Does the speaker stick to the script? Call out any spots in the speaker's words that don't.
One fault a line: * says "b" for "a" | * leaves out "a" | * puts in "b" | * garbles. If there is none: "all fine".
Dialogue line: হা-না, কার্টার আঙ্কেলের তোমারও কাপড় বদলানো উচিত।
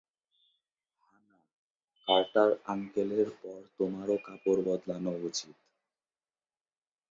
* puts in "পর"